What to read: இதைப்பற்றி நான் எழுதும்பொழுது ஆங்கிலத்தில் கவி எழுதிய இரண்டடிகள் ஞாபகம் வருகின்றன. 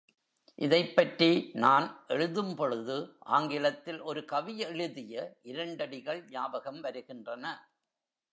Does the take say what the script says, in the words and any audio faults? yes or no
no